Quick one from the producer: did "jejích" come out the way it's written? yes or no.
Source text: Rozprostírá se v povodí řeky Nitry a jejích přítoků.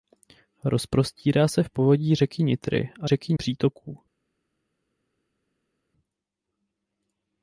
no